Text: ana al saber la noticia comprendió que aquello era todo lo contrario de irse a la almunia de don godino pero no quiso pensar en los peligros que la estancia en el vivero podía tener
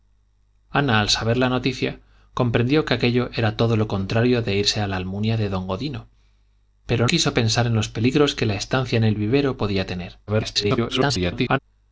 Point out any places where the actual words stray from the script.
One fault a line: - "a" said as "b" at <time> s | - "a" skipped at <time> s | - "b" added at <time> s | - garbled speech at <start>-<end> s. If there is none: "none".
- "no" skipped at 7.1 s
- garbled speech at 10.3-11.6 s